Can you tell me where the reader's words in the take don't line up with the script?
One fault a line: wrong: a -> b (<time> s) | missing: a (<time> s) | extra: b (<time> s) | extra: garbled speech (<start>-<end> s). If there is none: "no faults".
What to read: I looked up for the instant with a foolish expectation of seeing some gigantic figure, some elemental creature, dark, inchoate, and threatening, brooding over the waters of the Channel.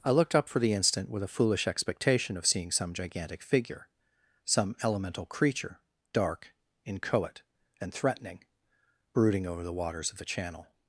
no faults